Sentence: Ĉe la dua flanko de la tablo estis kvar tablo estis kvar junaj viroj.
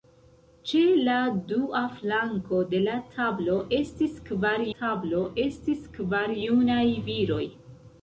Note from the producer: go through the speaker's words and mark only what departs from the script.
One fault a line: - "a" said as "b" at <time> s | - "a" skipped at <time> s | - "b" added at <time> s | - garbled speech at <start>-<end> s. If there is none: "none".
none